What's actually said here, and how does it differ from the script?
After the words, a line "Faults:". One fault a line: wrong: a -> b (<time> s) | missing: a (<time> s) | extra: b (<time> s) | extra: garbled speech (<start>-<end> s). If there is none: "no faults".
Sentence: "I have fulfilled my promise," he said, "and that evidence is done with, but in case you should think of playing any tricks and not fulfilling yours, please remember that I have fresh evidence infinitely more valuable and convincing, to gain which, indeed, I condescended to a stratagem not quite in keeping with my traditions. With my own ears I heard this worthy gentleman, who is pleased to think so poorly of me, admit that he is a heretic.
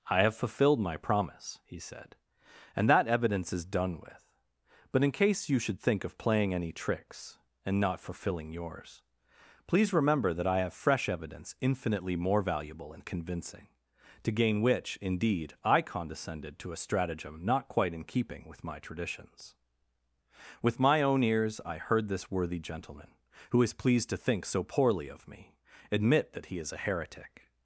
"I have fulfilled my promise," he said, "and that evidence is done with, but in case you should think of playing any tricks and not fulfilling yours, please remember that I have fresh evidence infinitely more valuable and convincing, to gain which, indeed, I condescended to a stratagem not quite in keeping with my traditions. With my own ears I heard this worthy gentleman, who is pleased to think so poorly of me, admit that he is a heretic.
Faults:
no faults